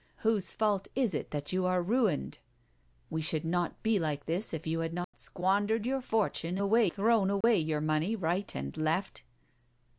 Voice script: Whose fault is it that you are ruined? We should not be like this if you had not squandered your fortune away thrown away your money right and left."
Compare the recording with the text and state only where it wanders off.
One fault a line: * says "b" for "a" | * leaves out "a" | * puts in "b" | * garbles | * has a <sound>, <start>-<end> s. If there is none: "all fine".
* has a dropout, 5.0-5.1 s
* has a dropout, 7.4-7.4 s